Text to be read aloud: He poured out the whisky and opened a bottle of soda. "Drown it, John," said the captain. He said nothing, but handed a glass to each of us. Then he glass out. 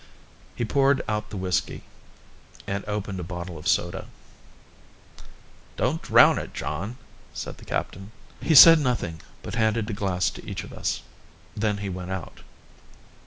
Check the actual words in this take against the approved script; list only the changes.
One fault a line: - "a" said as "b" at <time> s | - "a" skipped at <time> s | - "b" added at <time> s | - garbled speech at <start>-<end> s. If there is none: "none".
- "Don't" added at 5.8 s
- "glass" said as "went" at 11.9 s